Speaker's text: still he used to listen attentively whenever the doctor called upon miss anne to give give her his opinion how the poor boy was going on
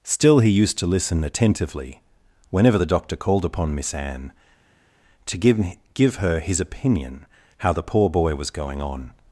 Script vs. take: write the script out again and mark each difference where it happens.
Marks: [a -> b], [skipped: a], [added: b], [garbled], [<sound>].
still he used to listen attentively whenever the doctor called upon miss anne to give give her his opinion how the poor boy was going on